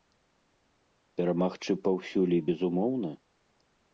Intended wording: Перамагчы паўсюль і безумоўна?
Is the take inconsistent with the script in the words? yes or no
no